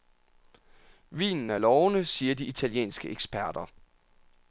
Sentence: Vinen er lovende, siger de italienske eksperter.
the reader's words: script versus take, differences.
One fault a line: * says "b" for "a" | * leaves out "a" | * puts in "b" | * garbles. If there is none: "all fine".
all fine